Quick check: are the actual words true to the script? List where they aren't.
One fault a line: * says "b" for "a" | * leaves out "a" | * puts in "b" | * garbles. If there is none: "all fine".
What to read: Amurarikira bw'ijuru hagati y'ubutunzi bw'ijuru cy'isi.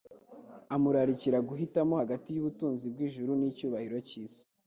* says "guhitamo" for "bw'ijuru"
* puts in "n'icyubahiro"